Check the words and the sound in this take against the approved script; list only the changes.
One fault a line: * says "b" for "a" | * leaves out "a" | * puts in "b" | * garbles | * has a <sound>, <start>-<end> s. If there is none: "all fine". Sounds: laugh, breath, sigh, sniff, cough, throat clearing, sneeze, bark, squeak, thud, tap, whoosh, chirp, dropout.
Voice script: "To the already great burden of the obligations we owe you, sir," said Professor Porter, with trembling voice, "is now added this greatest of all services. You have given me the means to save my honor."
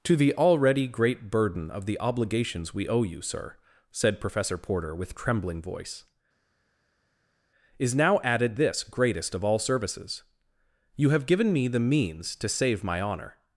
all fine